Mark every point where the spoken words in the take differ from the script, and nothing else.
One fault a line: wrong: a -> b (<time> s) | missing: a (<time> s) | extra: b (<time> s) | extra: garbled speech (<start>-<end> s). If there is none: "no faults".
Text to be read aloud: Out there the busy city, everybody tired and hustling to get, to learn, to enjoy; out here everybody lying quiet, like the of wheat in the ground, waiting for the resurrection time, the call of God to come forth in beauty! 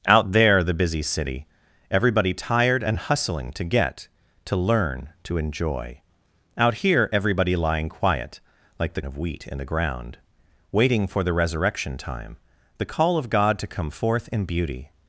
no faults